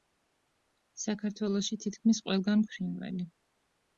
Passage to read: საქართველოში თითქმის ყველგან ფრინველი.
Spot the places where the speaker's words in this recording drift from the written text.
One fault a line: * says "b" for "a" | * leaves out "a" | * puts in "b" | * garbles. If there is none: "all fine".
all fine